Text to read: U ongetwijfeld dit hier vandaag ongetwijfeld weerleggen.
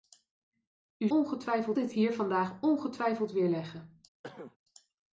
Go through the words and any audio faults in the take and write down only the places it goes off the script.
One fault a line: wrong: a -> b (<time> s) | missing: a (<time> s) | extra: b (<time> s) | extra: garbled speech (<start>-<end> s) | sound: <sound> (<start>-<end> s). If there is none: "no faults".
sound: cough (4.2-4.6 s)